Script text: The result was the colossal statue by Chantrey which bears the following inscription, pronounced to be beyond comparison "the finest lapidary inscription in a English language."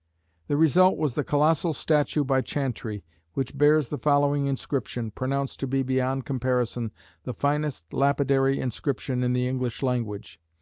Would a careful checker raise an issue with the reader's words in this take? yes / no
yes